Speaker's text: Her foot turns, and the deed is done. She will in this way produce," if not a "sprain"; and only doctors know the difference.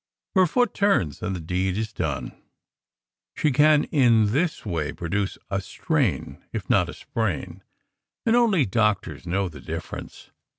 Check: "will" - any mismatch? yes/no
yes